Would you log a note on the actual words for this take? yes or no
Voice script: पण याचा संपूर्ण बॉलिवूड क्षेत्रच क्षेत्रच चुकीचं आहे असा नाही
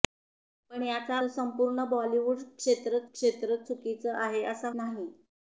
no